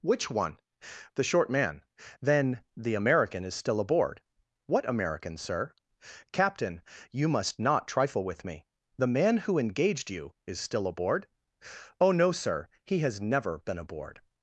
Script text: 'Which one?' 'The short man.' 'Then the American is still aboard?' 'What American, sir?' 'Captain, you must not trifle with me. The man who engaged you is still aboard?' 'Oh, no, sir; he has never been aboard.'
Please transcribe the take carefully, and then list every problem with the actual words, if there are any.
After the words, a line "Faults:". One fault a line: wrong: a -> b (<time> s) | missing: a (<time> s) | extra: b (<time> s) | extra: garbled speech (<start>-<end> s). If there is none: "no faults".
'Which one?' 'The short man.' 'Then the American is still aboard?' 'What American, sir?' 'Captain, you must not trifle with me. The man who engaged you is still aboard?' 'Oh, no, sir; he has never been aboard.'
Faults:
no faults